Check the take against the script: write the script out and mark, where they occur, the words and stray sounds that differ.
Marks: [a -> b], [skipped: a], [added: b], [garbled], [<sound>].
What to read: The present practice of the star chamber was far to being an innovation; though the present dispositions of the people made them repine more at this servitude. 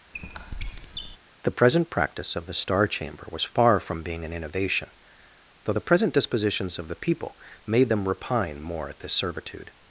[squeak] The present practice of the star chamber was far [to -> from] being an innovation; though the present dispositions of the people made them repine more at this servitude.